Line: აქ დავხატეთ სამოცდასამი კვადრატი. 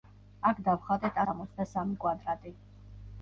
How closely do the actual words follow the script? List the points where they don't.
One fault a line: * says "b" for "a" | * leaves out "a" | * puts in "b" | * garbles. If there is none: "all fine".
all fine